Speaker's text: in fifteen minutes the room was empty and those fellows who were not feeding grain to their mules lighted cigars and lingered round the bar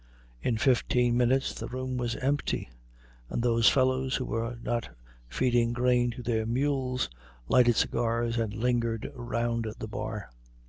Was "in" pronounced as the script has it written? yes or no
yes